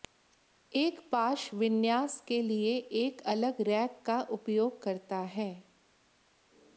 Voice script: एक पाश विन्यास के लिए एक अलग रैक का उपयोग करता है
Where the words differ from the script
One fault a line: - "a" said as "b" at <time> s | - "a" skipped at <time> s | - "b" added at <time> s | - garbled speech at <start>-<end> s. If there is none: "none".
none